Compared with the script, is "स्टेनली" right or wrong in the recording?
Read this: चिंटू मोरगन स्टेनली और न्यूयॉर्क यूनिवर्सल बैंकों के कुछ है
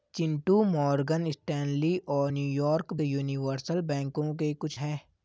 right